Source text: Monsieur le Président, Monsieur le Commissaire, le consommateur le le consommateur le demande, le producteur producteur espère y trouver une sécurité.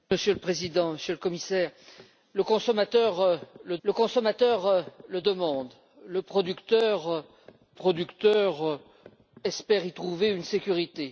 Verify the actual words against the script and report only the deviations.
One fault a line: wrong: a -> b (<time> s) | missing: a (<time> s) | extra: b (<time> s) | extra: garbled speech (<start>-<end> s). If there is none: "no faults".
no faults